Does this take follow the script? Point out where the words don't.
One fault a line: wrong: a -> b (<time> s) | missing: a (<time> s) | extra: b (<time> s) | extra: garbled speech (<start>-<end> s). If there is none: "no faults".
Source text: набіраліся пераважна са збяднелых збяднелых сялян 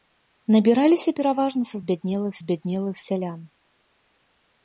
no faults